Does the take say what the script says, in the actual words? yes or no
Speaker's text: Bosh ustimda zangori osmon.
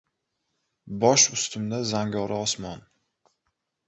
yes